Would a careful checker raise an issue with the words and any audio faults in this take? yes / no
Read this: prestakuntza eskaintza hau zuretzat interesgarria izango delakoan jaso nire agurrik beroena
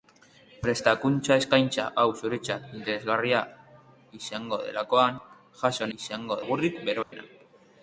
yes